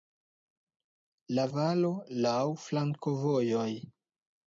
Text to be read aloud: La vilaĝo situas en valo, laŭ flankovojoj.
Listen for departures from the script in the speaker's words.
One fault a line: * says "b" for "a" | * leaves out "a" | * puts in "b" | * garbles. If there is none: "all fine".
* leaves out "vilaĝo situas en"